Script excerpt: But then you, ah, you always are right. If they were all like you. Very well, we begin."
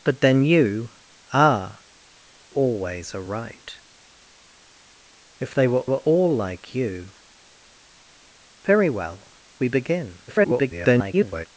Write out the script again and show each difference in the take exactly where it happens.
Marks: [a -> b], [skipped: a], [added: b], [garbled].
But then you, ah, [skipped: you] always are right. If they were [added: were] all like you. Very well, we begin." [garbled]